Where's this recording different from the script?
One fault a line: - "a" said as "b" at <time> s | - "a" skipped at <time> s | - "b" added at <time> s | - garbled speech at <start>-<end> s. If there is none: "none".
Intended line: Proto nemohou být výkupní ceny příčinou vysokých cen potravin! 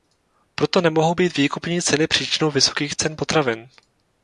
none